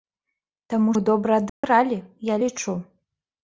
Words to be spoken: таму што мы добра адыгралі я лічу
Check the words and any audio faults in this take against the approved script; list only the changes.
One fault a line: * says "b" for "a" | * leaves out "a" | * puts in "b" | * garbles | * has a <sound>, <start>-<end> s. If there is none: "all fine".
* leaves out "што"
* has a dropout, 1.5-1.6 s